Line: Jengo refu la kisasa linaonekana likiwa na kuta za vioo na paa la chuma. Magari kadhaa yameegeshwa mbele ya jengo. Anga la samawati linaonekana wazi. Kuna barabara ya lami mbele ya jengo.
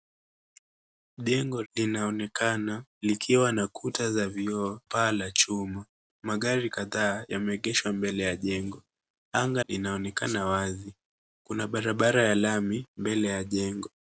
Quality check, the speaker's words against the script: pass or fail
fail